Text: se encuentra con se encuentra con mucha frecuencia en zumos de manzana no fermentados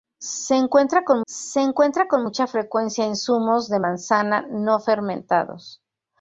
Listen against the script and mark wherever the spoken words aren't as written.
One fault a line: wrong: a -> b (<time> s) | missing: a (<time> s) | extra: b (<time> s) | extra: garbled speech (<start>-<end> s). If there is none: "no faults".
no faults